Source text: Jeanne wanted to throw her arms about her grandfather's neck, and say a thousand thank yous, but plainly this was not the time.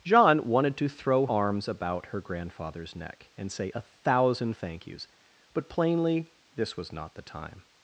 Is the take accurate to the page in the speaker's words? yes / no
no